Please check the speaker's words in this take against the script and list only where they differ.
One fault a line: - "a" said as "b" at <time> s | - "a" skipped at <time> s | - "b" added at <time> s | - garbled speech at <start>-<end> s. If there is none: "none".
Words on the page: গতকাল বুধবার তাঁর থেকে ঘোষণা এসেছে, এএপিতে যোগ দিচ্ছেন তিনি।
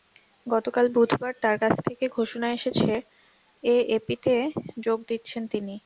- "কাছ" added at 1.6 s